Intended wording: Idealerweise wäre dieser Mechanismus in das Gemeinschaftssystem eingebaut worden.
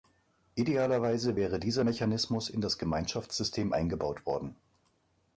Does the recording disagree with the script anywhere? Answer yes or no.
no